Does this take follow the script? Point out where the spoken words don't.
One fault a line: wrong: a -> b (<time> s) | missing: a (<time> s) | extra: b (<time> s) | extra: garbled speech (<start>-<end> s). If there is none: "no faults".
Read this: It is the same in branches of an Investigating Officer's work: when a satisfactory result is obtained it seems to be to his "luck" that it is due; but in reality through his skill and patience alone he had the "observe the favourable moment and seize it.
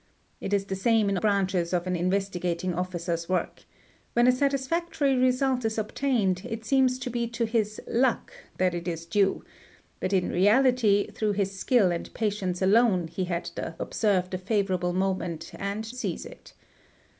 no faults